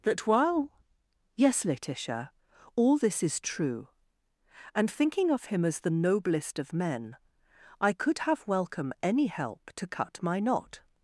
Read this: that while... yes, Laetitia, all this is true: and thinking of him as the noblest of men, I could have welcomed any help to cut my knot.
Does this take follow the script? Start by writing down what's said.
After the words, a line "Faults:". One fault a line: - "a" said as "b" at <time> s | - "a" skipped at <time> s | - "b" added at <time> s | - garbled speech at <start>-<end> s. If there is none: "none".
that while... yes, Laetitia, all this is true: and thinking of him as the noblest of men, I could have welcome any help to cut my knot.
Faults:
- "welcomed" said as "welcome" at 8.5 s